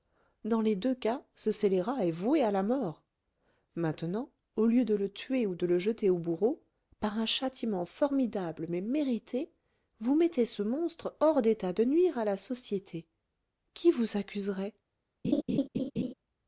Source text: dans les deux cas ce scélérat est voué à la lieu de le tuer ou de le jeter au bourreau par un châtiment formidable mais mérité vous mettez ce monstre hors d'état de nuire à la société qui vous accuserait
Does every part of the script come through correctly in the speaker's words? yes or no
no